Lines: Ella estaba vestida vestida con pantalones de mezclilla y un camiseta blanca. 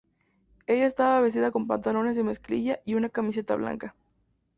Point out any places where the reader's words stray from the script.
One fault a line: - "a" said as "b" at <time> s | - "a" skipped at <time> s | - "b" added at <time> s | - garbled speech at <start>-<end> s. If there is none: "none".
- "vestida" skipped at 1.5 s
- "un" said as "una" at 2.9 s